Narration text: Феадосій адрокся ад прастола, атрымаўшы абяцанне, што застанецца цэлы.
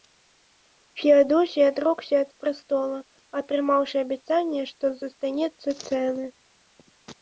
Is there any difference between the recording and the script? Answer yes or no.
no